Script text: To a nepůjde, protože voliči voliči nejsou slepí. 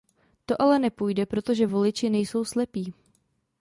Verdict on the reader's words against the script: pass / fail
fail